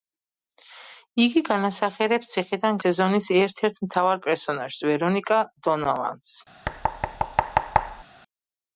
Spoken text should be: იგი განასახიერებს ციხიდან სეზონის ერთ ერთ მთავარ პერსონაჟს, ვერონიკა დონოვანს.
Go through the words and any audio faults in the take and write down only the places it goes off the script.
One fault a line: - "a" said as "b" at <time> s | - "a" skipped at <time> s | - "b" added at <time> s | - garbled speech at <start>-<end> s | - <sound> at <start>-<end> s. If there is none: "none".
- thud at 6.6-8.0 s